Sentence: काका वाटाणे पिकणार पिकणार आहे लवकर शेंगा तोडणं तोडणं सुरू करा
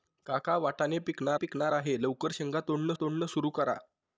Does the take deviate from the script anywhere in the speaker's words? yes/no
no